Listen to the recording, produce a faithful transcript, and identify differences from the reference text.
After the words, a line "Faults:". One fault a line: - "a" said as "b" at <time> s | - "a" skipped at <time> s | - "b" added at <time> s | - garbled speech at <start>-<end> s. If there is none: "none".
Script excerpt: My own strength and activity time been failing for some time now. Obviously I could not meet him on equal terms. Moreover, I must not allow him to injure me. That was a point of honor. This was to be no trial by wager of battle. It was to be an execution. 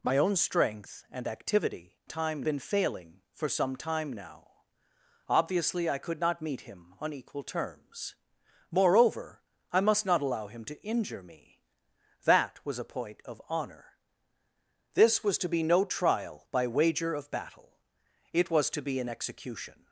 My own strength and activity time been failing for some time now. Obviously I could not meet him on equal terms. Moreover, I must not allow him to injure me. That was a point of honor. This was to be no trial by wager of battle. It was to be an execution.
Faults:
none